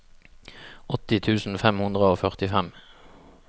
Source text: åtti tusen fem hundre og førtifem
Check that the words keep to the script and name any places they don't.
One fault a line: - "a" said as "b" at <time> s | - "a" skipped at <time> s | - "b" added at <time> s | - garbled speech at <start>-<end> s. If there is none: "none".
none